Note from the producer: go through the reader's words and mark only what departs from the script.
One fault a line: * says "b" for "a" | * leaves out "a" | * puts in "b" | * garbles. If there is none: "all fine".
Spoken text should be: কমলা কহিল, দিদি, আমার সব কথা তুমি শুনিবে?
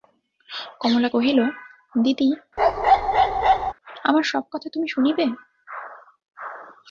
all fine